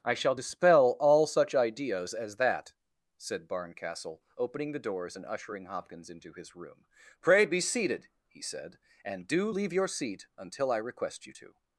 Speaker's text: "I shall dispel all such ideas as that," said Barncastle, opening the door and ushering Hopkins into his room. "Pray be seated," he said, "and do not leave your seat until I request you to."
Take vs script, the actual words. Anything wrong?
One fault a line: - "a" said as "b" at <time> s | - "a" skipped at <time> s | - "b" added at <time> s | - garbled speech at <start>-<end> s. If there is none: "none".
- "door" said as "doors" at 4.8 s
- "not" skipped at 9.5 s